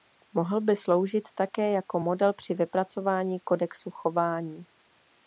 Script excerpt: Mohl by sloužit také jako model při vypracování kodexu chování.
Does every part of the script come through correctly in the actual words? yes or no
yes